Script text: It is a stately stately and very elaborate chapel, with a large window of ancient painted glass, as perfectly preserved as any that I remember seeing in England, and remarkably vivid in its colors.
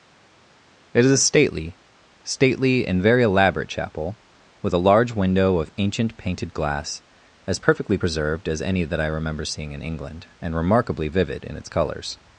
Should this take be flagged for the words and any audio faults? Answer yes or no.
no